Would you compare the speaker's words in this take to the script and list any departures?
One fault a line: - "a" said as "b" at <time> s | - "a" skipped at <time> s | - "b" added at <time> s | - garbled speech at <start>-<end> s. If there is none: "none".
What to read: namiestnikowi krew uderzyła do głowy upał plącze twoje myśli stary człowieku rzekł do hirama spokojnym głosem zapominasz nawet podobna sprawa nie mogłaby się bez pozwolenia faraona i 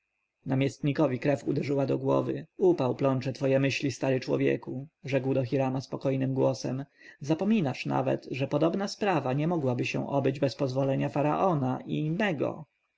- "że" added at 8.3 s
- "obyć" added at 10.1 s